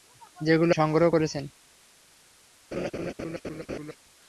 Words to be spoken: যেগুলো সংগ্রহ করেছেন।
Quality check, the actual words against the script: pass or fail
pass